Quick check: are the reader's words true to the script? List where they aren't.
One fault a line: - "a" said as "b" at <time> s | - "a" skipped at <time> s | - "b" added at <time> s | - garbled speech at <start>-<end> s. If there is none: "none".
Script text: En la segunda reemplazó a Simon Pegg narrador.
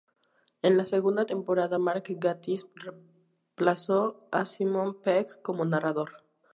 - "temporada Mark Gatiss" added at 1.3 s
- "como" added at 5.4 s